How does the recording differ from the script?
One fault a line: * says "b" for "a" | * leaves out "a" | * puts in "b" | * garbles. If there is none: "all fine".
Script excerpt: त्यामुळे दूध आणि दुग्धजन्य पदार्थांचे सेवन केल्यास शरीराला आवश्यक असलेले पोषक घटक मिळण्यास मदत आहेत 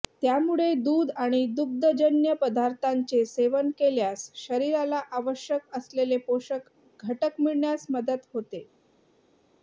* says "होते" for "आहेत"